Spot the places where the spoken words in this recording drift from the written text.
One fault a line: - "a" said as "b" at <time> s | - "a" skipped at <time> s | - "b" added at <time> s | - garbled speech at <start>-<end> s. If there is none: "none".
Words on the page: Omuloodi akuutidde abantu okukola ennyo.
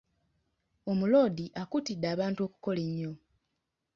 none